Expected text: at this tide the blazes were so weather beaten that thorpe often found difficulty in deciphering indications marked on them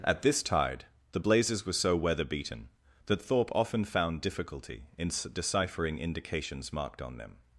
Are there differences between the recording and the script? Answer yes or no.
no